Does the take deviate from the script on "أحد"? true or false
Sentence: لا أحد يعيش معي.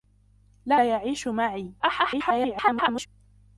true